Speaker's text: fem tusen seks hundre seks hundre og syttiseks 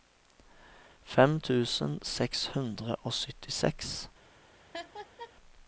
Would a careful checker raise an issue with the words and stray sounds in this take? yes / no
yes